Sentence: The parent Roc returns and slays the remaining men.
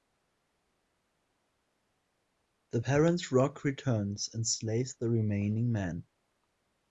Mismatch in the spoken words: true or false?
false